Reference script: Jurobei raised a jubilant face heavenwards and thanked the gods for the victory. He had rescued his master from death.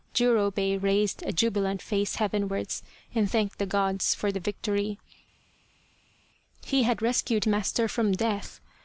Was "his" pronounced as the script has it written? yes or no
no